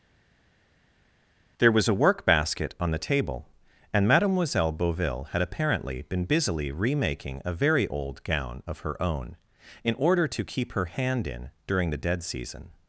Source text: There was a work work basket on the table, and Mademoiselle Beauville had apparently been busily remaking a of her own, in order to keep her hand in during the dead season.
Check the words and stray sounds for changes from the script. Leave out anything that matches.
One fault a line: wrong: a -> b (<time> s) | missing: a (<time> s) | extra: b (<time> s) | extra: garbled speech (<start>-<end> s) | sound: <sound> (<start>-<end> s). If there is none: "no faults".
missing: work (2.3 s)
extra: very old gown (7.5 s)